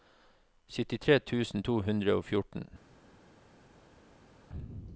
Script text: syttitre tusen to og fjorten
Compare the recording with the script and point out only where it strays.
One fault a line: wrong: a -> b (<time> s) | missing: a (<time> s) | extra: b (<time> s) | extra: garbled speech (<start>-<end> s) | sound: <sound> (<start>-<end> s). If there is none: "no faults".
extra: hundre (1.9 s)